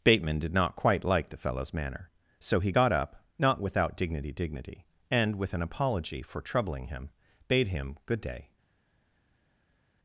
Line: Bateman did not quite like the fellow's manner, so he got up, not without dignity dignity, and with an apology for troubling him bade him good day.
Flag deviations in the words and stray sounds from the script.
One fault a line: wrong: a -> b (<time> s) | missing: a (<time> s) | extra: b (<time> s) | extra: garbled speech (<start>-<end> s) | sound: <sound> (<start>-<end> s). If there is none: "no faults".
no faults